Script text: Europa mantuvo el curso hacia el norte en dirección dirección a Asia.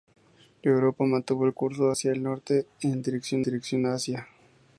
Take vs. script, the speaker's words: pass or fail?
pass